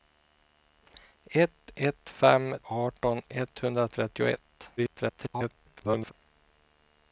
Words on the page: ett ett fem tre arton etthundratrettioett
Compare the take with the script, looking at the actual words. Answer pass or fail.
fail